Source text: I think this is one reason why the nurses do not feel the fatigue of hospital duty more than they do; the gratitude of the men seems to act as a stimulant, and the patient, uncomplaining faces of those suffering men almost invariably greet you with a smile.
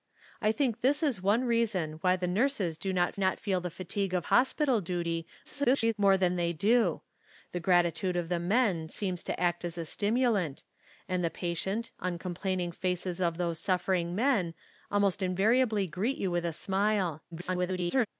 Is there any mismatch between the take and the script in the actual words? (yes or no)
yes